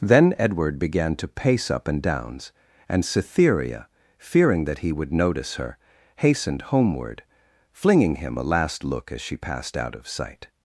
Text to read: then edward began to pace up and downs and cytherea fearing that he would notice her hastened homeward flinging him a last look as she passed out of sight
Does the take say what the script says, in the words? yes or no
yes